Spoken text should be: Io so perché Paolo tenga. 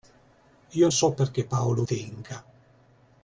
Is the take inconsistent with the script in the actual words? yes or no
no